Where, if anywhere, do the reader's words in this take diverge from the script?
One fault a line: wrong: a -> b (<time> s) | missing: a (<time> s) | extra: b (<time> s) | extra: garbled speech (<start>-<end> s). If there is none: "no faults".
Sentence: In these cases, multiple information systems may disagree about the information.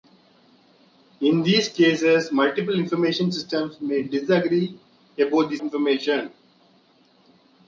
no faults